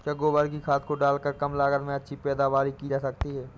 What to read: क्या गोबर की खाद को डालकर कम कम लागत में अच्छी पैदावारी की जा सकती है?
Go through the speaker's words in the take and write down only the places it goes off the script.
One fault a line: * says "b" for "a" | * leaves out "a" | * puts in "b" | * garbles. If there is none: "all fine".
* leaves out "कम"